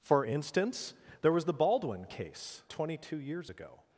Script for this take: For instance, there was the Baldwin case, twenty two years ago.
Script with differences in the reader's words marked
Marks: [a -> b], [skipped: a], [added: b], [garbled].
For instance, there was the Baldwin case, twenty two years ago.